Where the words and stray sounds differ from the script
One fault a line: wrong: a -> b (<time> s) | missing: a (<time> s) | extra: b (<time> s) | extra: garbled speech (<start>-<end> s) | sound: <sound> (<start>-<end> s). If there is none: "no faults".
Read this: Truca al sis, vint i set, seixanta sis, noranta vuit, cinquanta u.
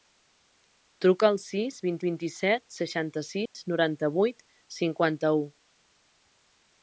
extra: vint (2.1 s)
sound: dropout (3.5-3.5 s)